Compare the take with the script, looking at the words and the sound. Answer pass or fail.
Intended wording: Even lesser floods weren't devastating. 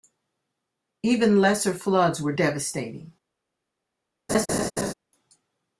fail